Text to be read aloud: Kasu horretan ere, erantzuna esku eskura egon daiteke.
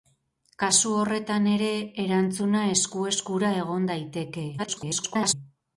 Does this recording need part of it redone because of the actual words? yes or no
yes